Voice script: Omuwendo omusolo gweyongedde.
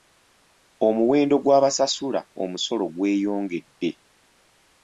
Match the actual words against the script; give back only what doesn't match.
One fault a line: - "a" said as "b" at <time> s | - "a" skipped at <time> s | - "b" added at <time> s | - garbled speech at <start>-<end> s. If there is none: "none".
- "gw'abasasula" added at 1.4 s